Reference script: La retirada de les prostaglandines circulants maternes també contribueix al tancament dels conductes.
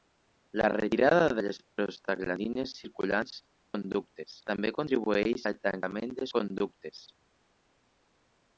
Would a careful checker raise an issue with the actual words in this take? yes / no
yes